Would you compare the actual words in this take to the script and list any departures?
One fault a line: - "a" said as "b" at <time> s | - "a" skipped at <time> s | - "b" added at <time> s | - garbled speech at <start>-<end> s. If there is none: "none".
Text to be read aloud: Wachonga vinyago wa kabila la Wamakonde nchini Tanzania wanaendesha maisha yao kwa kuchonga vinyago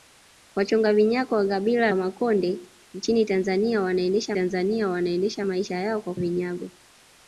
- "la" skipped at 1.9 s
- "Tanzania wanaendesha" added at 4.3 s
- "kuchonga" skipped at 6.1 s